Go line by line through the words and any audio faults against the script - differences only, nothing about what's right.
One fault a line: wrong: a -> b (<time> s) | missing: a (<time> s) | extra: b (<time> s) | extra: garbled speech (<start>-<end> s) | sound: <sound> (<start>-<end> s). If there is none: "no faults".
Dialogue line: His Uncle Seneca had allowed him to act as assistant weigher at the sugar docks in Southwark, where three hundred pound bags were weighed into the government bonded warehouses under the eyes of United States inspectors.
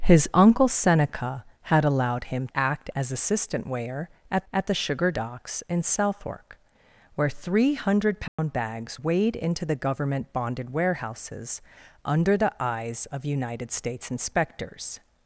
missing: to (2.5 s)
extra: at (4.5 s)
sound: dropout (8.3-8.4 s)
missing: were (9.0 s)